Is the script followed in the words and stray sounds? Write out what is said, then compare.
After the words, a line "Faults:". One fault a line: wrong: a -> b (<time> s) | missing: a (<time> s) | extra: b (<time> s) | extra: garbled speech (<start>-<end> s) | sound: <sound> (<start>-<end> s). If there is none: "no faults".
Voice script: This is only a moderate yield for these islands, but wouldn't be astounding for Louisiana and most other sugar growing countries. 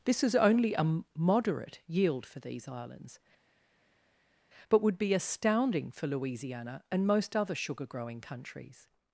This is only a moderate yield for these islands, but would be astounding for Louisiana and most other sugar growing countries.
Faults:
wrong: wouldn't -> would (4.8 s)